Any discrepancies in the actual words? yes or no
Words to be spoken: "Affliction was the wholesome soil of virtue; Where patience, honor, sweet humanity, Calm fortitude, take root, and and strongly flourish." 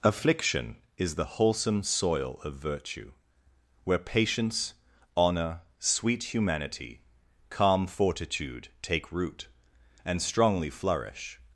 yes